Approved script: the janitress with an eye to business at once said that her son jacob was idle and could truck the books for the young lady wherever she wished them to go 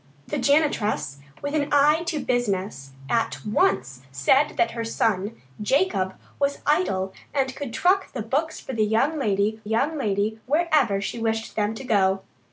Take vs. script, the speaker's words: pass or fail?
fail